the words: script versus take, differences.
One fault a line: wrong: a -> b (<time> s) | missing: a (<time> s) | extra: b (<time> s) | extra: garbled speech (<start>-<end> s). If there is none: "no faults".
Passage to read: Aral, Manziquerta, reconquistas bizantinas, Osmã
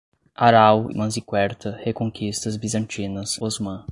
no faults